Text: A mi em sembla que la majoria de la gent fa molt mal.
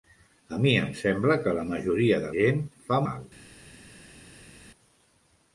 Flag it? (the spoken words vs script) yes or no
yes